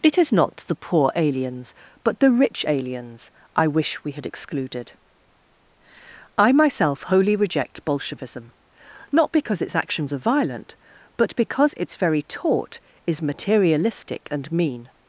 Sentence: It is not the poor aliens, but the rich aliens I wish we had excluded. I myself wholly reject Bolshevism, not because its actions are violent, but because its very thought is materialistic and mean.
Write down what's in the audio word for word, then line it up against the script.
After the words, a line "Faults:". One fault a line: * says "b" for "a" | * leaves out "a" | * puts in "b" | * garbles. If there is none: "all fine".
It is not the poor aliens, but the rich aliens I wish we had excluded. I myself wholly reject Bolshevism, not because its actions are violent, but because its very taught is materialistic and mean.
Faults:
* says "taught" for "thought"